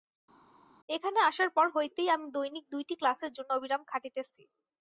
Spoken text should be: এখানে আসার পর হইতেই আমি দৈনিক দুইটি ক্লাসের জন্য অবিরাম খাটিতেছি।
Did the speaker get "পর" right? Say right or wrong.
right